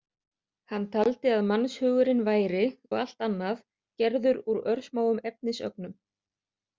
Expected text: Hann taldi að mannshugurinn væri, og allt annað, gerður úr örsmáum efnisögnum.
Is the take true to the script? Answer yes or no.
yes